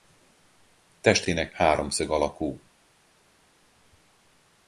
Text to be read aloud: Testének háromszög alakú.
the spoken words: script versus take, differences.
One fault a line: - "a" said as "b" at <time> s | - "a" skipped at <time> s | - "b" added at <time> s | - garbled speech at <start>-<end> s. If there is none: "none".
none